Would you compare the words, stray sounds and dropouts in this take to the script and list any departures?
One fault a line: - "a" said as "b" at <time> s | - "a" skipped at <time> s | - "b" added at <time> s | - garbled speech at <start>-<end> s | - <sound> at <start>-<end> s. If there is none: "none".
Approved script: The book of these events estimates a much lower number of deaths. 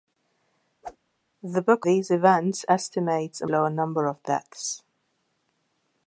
- whoosh at 0.8-1.0 s
- "of" skipped at 1.9 s
- "much" skipped at 3.5 s